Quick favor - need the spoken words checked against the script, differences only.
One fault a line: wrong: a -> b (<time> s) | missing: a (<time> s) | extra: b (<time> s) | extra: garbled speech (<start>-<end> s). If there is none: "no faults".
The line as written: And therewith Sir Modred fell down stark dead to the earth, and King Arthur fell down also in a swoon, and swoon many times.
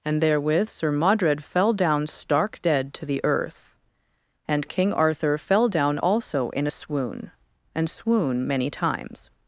no faults